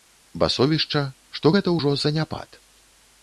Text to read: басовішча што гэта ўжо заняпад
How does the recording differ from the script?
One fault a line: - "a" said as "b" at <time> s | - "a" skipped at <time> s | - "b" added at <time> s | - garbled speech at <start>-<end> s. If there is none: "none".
none